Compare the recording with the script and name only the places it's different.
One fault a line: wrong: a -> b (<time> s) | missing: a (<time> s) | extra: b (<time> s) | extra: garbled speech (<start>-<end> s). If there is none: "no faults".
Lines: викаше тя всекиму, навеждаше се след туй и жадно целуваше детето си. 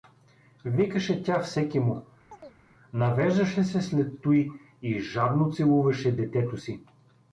no faults